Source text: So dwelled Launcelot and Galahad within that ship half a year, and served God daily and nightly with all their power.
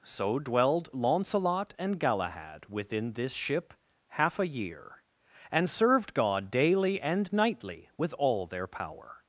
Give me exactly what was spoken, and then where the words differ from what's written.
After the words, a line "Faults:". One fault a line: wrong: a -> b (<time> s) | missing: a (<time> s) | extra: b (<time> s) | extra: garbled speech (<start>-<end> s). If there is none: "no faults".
So dwelled Launcelot and Galahad within this ship half a year, and served God daily and nightly with all their power.
Faults:
wrong: that -> this (3.1 s)